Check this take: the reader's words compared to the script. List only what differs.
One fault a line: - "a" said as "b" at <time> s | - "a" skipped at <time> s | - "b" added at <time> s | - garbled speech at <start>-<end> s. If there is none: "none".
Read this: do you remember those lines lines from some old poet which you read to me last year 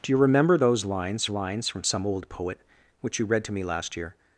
none